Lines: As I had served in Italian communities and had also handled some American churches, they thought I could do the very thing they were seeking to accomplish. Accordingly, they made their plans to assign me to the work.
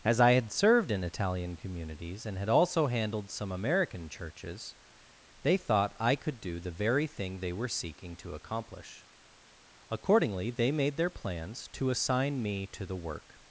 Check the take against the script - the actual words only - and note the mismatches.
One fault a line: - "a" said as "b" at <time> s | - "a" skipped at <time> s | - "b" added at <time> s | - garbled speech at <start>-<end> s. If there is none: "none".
none